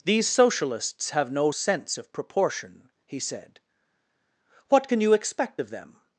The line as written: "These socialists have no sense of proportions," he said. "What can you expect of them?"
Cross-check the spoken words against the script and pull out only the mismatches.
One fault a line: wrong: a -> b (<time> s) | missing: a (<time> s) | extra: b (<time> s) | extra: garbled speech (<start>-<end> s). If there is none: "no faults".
wrong: proportions -> proportion (2.1 s)